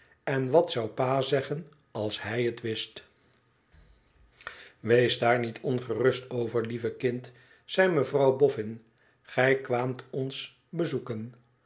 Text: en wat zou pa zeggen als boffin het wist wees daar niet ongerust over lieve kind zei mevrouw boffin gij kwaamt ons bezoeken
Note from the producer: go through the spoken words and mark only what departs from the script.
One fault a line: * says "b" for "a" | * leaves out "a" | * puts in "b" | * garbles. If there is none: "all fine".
* says "hij" for "boffin"